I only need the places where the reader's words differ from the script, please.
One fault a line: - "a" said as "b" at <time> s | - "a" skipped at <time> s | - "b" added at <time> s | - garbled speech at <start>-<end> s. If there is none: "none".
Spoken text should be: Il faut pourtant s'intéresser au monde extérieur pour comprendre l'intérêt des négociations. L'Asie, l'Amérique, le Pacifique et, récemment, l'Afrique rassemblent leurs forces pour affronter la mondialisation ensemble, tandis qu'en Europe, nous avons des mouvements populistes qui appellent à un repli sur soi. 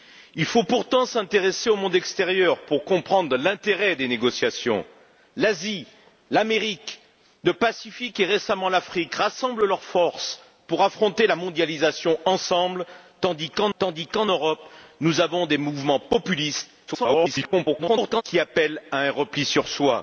- "tandis qu'en" added at 13.8 s
- garbled speech at 16.9-18.2 s